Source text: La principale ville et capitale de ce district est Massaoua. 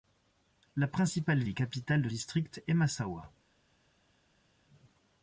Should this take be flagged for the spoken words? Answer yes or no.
yes